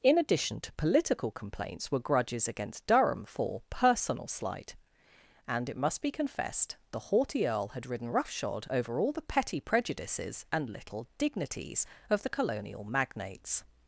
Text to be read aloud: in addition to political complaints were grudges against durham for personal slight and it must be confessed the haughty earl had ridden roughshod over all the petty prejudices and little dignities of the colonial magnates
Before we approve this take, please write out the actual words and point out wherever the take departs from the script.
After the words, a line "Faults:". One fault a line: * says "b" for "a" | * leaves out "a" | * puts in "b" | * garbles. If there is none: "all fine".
in addition to political complaints were grudges against durham for personal slight and it must be confessed the haughty earl had ridden roughshod over all the petty prejudices and little dignities of the colonial magnates
Faults:
all fine